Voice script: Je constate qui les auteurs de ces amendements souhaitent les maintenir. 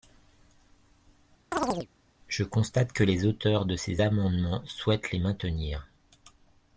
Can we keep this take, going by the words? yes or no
no